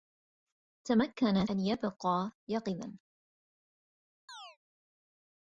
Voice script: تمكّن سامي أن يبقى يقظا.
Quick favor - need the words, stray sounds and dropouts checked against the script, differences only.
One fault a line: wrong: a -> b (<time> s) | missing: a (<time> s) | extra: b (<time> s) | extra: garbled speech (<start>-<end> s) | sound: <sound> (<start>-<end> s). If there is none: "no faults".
missing: سامي (1.4 s)
sound: chirp (4.3-4.6 s)